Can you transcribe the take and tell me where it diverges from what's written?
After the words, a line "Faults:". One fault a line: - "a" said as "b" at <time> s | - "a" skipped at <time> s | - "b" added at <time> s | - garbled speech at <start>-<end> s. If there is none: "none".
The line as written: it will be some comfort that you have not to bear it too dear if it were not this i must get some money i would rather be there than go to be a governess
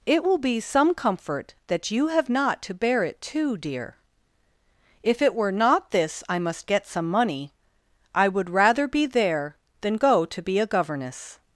it will be some comfort that you have not to bear it too dear if it were not this i must get some money i would rather be there than go to be a governess
Faults:
none